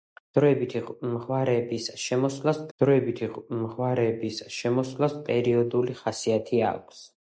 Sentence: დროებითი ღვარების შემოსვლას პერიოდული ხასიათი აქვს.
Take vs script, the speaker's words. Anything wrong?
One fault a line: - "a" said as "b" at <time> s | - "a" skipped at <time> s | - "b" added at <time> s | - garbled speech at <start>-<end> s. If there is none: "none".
- "დროებითი ღვარების შემოსვლას" added at 2.8 s